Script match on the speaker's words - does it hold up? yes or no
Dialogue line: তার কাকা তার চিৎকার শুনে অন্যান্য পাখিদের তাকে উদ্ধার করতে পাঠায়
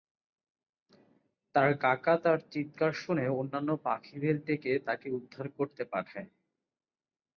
no